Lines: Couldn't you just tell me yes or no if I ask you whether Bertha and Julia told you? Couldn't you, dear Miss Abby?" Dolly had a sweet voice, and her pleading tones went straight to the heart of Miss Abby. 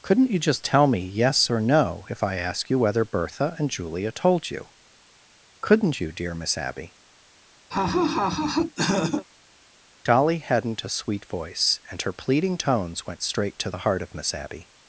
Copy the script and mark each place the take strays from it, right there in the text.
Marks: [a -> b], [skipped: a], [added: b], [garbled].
Couldn't you just tell me yes or no if I ask you whether Bertha and Julia told you? Couldn't you, dear Miss Abby?" Dolly [had -> hadn't] a sweet voice, and her pleading tones went straight to the heart of Miss Abby.